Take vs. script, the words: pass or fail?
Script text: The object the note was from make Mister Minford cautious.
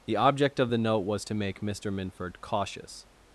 fail